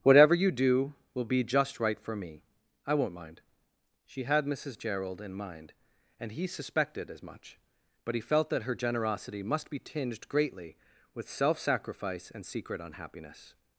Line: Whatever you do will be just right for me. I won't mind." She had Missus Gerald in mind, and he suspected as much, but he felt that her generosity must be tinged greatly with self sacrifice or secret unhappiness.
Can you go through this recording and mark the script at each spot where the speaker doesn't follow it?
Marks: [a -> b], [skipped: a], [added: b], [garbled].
Whatever you do will be just right for me. I won't mind." She had Missus Gerald in mind, and he suspected as much, but he felt that her generosity must be tinged greatly with self sacrifice [or -> and] secret unhappiness.